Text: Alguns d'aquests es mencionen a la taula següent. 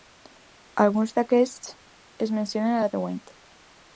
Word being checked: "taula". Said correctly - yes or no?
no